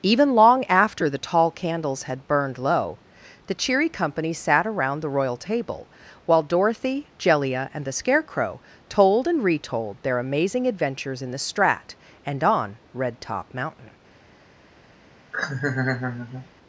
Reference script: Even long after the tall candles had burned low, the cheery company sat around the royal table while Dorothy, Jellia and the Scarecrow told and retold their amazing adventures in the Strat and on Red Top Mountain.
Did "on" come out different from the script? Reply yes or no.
no